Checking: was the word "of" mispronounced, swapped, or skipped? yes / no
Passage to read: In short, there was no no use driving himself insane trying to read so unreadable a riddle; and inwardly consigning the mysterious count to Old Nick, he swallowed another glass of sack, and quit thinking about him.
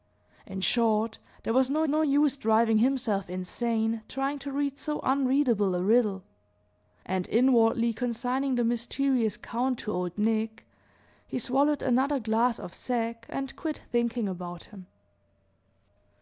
no